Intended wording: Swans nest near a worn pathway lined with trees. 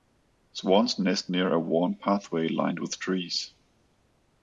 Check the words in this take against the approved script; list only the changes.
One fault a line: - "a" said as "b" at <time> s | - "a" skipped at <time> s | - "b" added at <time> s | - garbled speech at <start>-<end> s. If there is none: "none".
none